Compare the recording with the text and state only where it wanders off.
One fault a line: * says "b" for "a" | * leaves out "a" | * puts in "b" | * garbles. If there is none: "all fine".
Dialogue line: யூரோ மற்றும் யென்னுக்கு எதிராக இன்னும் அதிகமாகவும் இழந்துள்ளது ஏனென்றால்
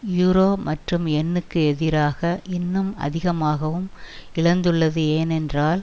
all fine